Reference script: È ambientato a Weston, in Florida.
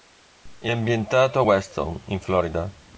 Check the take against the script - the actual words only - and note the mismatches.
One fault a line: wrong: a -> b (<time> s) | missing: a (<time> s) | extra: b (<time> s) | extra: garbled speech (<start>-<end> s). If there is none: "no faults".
no faults